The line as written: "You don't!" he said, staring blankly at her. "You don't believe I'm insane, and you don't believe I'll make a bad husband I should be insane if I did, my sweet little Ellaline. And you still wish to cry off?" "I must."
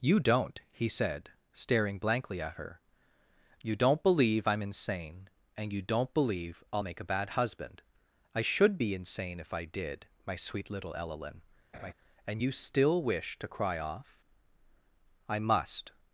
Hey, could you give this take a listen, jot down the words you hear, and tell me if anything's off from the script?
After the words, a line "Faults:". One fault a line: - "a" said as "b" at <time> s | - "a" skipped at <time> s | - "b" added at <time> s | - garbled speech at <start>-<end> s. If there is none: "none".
"You don't!" he said, staring blankly at her. "You don't believe I'm insane, and you don't believe I'll make a bad husband I should be insane if I did, my sweet little Ellaline. And you still wish to cry off?" "I must."
Faults:
none